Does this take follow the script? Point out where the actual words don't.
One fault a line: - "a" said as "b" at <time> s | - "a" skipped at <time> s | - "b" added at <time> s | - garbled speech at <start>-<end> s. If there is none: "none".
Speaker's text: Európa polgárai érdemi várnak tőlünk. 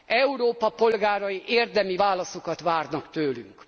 - "válaszokat" added at 1.9 s